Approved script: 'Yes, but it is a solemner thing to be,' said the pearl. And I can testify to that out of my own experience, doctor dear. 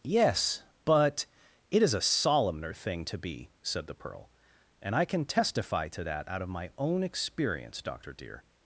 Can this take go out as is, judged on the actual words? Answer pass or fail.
pass